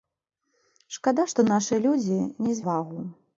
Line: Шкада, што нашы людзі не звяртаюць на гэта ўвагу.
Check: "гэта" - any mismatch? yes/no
yes